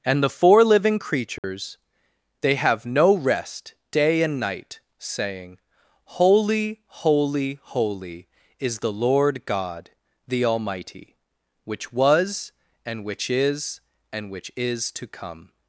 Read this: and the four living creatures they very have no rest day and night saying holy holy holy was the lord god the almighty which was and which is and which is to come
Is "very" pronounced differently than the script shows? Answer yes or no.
yes